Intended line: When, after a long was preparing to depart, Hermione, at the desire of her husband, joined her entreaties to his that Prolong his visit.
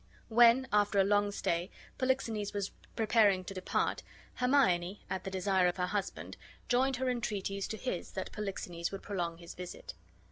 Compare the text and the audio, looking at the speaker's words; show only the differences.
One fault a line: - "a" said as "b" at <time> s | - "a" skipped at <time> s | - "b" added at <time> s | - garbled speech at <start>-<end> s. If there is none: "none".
- "stay Polixenes" added at 1.3 s
- "Polixenes would" added at 8.3 s